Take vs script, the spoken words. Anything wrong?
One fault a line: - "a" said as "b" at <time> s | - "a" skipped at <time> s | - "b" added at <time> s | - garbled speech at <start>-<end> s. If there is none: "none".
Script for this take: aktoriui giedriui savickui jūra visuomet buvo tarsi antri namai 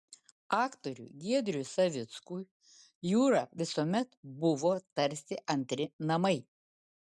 none